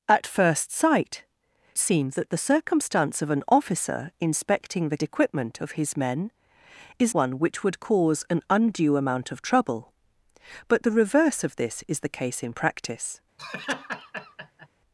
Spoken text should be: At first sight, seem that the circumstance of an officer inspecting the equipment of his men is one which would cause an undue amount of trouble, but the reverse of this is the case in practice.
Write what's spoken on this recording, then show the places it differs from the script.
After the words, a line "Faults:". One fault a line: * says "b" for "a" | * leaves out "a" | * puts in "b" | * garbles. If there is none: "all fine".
At first sight, seem that the circumstance of an officer inspecting the equipment of his men is one which would cause an undue amount of trouble, but the reverse of this is the case in practice.
Faults:
all fine